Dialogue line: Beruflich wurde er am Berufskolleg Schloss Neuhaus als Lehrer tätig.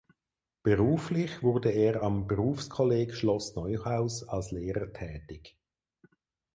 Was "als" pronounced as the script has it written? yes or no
yes